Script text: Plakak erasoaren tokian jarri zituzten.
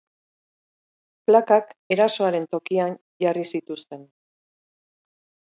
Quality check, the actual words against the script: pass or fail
pass